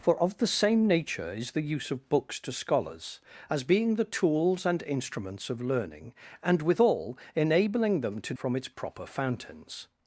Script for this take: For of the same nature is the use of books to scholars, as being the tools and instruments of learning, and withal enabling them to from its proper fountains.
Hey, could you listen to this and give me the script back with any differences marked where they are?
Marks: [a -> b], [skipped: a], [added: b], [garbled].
For of the same nature is the use of books to scholars, as being the tools and instruments of learning, and withal enabling them to from its proper fountains.